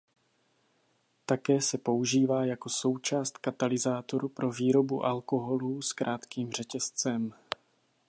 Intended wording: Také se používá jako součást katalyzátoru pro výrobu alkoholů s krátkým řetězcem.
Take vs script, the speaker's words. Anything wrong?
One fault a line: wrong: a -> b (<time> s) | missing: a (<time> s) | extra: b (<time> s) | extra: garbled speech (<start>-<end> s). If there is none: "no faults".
no faults